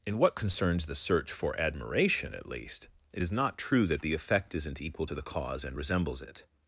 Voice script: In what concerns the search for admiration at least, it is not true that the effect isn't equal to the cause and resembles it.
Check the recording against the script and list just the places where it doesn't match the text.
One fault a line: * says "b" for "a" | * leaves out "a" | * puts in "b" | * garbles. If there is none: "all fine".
all fine